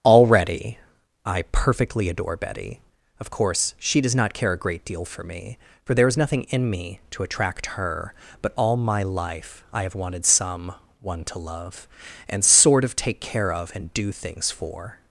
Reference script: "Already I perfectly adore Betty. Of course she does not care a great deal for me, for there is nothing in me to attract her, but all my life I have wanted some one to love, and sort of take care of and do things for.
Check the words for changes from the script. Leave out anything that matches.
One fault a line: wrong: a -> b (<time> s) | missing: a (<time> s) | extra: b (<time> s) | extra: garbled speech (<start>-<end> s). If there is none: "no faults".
no faults